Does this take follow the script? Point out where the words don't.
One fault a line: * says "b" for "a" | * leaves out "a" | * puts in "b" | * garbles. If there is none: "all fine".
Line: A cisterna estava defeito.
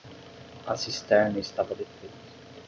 all fine